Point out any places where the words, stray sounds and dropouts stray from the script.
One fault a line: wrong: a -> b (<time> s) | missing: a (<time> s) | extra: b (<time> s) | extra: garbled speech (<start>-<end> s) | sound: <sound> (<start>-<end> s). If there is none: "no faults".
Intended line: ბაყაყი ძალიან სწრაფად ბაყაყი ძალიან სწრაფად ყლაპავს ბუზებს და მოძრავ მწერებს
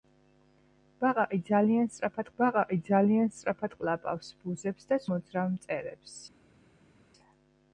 no faults